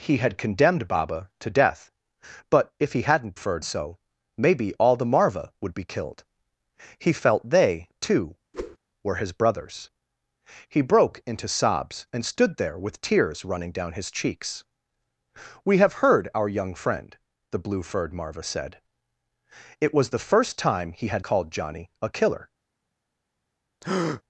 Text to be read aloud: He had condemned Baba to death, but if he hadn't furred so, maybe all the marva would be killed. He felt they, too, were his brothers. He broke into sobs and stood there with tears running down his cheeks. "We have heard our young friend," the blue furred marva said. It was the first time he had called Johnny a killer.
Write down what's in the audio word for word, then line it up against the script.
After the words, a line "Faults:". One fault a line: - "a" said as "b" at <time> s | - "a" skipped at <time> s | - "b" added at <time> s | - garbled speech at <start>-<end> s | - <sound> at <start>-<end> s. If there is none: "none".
He had condemned Baba to death, but if he hadn't furred so, maybe all the marva would be killed. He felt they, too, were his brothers. He broke into sobs and stood there with tears running down his cheeks. "We have heard our young friend," the blue furred marva said. It was the first time he had called Johnny a killer.
Faults:
- whoosh at 8.5-8.8 s
- breath at 23.8-24.2 s